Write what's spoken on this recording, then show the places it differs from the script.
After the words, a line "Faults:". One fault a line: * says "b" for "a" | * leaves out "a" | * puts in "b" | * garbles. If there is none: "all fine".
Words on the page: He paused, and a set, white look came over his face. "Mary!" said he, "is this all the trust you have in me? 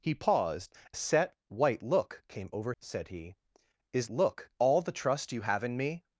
He paused, a set, white look came over!" said he, "is look all the trust you have in me?
Faults:
* leaves out "and"
* leaves out "his face Mary"
* says "look" for "this"